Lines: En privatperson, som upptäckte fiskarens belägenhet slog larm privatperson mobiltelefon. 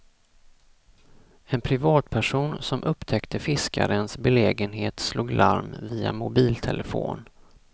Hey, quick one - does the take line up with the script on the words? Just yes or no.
no